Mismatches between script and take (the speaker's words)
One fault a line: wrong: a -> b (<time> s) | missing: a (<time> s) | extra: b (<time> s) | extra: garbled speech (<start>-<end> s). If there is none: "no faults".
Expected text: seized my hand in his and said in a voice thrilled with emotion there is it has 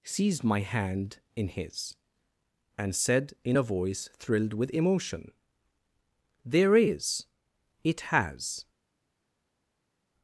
no faults